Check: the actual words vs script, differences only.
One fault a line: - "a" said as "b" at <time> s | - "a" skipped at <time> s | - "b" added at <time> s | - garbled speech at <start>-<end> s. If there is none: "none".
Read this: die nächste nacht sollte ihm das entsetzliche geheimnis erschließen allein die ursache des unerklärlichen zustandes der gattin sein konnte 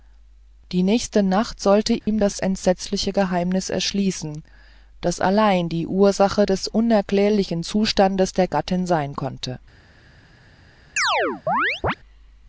- "das" added at 5.0 s